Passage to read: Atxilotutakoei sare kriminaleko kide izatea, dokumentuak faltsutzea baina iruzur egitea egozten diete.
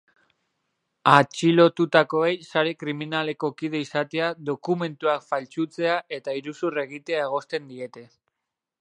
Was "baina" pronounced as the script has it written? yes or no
no